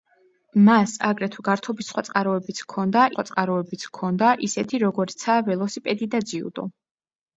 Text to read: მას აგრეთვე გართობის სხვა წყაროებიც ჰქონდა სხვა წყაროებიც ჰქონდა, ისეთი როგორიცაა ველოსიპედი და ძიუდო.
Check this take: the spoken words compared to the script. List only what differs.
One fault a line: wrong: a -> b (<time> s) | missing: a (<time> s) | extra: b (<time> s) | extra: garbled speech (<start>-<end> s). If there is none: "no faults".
no faults